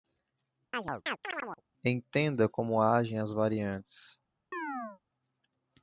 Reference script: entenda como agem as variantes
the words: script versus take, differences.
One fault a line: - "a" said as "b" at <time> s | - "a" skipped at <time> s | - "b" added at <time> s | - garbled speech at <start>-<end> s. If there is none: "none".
none